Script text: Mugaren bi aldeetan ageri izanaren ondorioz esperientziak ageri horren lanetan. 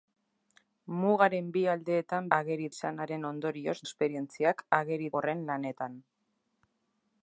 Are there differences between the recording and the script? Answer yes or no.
no